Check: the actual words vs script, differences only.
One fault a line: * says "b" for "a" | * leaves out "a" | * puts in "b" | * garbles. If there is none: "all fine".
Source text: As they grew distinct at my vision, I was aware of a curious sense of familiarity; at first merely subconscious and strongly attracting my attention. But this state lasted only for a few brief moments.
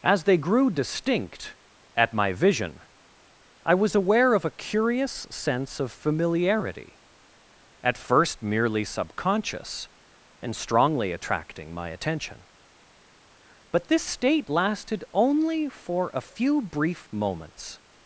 all fine